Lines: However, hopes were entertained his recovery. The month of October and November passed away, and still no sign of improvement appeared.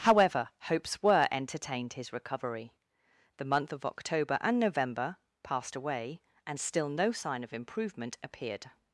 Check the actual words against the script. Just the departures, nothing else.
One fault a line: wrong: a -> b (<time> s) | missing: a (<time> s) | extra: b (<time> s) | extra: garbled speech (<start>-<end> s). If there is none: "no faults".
no faults